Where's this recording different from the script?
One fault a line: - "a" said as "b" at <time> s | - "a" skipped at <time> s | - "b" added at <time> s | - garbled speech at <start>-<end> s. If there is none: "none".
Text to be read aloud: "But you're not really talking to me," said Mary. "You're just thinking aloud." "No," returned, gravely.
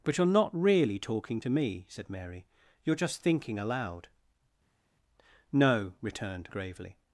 none